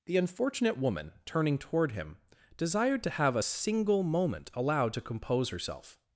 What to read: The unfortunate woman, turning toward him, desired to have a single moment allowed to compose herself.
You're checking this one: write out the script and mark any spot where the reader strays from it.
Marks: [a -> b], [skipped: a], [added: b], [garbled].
The unfortunate woman, turning toward him, desired to have a single moment allowed to compose herself.